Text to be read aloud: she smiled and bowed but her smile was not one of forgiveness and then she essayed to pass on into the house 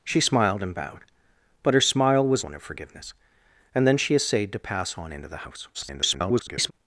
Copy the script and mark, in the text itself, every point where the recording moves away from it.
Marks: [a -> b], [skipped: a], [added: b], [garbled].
she smiled and bowed but her smile was [skipped: not] one of forgiveness and then she essayed to pass on into the house [garbled]